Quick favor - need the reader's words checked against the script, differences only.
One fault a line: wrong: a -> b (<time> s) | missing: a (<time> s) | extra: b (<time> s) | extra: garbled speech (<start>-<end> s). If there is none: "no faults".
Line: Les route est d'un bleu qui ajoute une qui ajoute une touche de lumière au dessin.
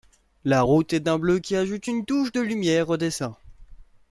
wrong: Les -> La (0.5 s)
missing: qui ajoute une (2.0 s)